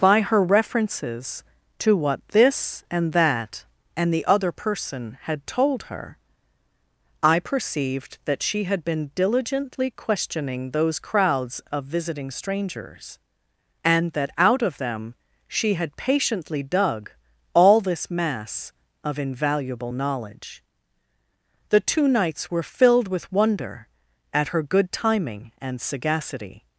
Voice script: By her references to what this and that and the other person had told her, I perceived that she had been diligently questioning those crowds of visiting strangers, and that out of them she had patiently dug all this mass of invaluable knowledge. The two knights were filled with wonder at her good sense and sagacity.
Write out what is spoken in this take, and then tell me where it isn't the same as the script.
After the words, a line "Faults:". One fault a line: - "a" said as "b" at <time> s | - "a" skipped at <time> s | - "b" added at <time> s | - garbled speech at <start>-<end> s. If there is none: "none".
By her references to what this and that and the other person had told her, I perceived that she had been diligently questioning those crowds of visiting strangers, and that out of them she had patiently dug all this mass of invaluable knowledge. The two knights were filled with wonder at her good timing and sagacity.
Faults:
- "sense" said as "timing" at 24.9 s